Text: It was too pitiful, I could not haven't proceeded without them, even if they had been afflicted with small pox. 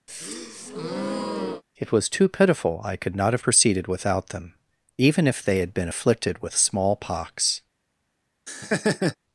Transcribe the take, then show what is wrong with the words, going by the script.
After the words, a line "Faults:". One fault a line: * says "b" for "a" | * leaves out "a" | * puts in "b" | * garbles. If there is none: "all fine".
It was too pitiful, I could not have proceeded without them, even if they had been afflicted with small pox.
Faults:
* says "have" for "haven't"